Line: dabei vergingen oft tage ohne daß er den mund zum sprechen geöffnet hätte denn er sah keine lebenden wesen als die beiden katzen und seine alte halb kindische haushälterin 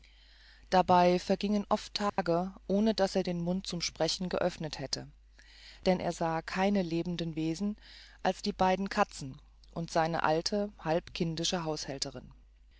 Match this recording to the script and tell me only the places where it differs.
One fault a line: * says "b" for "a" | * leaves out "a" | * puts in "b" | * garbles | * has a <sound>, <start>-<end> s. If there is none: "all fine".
* has a dropout, 2.1-2.2 s